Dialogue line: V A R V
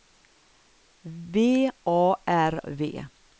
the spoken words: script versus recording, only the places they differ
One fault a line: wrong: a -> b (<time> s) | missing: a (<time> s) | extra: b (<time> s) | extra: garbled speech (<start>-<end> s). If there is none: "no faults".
no faults